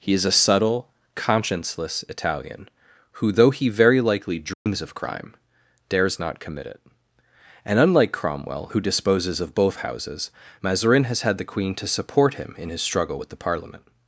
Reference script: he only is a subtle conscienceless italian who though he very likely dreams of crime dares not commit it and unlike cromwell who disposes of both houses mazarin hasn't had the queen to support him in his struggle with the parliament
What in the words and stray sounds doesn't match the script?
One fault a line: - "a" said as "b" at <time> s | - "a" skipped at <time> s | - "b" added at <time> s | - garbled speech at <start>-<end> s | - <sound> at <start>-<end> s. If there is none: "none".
- "only" skipped at 0.1 s
- dropout at 4.5-4.7 s
- "hasn't" said as "has" at 11.0 s